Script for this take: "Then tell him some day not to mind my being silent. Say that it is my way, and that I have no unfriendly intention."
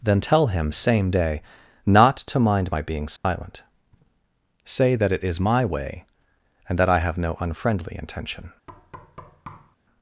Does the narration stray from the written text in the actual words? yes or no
yes